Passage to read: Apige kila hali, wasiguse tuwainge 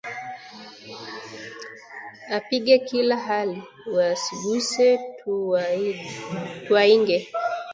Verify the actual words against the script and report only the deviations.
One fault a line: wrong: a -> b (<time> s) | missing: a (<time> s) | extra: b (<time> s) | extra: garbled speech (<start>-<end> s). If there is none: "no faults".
no faults